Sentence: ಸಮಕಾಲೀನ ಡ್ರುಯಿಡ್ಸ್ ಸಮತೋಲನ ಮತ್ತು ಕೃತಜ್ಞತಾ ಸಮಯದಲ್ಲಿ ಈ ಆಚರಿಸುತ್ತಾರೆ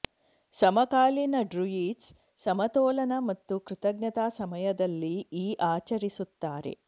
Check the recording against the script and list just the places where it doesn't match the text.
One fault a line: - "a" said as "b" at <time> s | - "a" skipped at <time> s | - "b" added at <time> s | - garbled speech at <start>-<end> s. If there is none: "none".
none